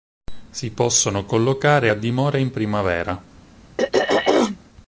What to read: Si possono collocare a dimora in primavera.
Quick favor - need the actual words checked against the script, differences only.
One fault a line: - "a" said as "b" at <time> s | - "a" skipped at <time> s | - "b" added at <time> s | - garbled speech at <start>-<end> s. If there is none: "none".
none